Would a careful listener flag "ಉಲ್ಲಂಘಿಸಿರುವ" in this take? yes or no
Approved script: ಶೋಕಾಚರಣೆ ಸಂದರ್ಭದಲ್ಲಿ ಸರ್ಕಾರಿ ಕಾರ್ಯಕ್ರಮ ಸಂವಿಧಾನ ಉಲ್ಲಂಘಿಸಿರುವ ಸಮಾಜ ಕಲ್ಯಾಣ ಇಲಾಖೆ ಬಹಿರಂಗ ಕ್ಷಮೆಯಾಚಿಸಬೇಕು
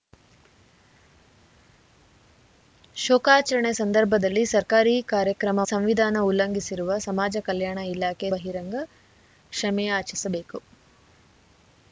no